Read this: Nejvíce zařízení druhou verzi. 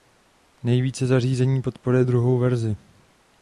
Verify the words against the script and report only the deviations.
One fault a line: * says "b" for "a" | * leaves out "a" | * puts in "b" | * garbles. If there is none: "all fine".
* puts in "podporuje"